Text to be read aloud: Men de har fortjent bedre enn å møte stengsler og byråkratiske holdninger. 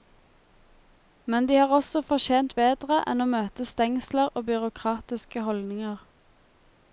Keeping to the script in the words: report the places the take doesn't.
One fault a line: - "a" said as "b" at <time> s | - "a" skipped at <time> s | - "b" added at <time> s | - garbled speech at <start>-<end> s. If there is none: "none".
- "også" added at 1.8 s